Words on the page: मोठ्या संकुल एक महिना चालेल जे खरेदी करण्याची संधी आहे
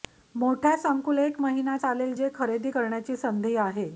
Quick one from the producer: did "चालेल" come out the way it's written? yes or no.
yes